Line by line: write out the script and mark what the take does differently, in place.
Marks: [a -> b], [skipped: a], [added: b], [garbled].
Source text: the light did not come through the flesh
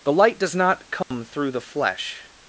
the light [did -> does] not come through the flesh